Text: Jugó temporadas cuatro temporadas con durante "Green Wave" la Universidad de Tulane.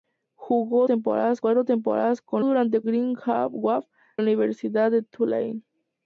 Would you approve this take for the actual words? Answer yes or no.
yes